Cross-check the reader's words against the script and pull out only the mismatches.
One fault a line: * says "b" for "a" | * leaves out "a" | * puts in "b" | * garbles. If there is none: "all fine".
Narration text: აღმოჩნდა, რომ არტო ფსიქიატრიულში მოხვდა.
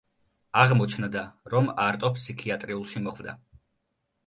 all fine